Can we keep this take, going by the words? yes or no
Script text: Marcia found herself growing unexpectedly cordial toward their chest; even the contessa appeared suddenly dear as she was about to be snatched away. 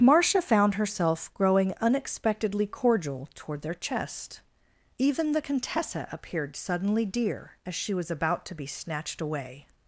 yes